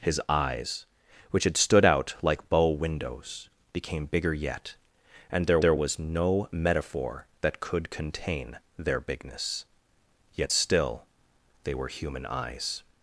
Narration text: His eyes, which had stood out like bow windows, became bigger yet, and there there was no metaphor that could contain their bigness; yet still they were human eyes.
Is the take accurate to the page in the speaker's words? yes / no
yes